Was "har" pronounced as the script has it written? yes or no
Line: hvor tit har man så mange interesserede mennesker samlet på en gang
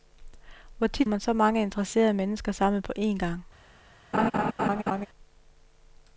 no